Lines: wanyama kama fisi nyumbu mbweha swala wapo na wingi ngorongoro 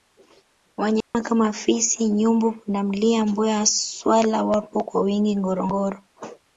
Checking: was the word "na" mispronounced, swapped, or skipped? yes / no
yes